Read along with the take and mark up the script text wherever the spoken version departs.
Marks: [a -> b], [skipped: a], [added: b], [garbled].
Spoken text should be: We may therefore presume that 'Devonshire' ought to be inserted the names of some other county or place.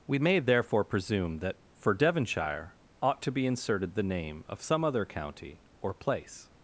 We may therefore presume that [added: for] 'Devonshire' ought to be inserted the [names -> name] of some other county or place.